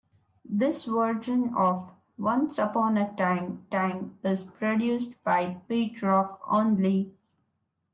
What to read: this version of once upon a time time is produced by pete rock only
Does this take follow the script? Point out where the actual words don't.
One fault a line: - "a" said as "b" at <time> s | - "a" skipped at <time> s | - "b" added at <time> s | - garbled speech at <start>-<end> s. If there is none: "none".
none